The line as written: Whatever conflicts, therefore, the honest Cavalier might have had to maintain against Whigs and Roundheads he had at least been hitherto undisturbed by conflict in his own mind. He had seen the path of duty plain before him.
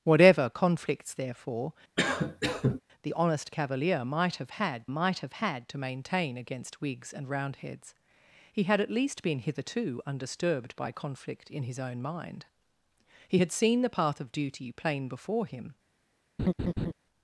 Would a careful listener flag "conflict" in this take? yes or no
no